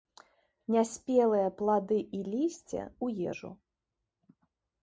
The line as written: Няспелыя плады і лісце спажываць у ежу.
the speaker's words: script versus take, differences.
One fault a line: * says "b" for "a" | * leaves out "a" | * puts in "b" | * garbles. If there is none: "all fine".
* leaves out "спажываць"